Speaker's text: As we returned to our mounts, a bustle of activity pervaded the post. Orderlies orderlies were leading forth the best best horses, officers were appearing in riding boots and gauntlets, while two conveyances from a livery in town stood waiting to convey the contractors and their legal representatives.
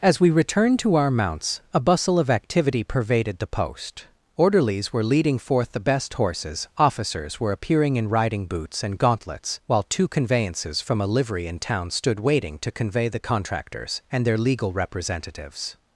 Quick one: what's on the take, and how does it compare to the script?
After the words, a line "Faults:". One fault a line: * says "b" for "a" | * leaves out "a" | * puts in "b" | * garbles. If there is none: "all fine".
As we returned to our mounts, a bustle of activity pervaded the post. Orderlies were leading forth the best horses, officers were appearing in riding boots and gauntlets, while two conveyances from a livery in town stood waiting to convey the contractors and their legal representatives.
Faults:
* leaves out "orderlies"
* leaves out "best"